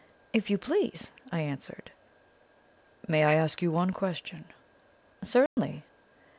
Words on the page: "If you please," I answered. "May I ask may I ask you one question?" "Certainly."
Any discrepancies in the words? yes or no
yes